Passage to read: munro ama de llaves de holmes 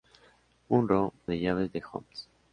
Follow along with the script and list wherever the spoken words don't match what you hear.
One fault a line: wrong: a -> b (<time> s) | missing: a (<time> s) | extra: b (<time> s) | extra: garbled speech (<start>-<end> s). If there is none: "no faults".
missing: ama (1.1 s)